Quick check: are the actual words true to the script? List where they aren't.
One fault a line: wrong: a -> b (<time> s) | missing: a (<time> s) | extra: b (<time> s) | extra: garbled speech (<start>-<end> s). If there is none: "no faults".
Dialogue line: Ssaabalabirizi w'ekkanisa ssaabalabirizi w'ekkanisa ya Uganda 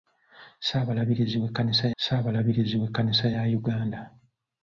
no faults